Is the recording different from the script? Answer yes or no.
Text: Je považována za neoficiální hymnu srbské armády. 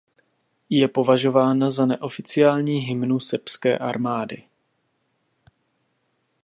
no